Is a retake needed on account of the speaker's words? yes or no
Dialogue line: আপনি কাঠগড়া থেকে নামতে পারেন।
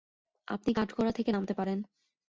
no